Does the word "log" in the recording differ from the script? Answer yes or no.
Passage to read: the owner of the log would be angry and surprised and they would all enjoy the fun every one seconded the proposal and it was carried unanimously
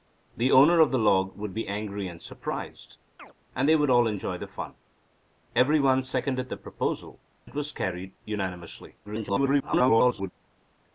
no